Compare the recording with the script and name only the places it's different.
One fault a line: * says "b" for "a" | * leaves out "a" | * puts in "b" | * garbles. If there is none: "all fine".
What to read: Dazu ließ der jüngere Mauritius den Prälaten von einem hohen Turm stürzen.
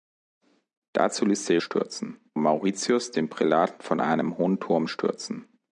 * says "stürzen" for "jüngere"